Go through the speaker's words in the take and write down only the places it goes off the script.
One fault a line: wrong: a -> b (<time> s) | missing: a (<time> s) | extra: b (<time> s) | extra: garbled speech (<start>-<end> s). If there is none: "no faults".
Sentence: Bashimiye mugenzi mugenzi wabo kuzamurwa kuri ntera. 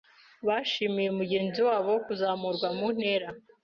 missing: mugenzi (1.6 s)
wrong: kuri -> mu (2.8 s)